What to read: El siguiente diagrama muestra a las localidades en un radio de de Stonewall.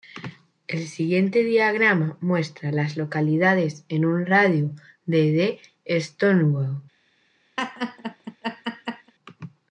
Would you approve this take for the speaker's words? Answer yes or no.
yes